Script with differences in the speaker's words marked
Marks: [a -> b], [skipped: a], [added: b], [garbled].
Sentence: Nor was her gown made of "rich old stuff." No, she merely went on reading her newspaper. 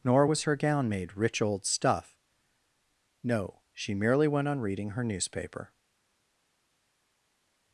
Nor was her gown made [skipped: of] "rich old stuff." No, she merely went on reading her newspaper.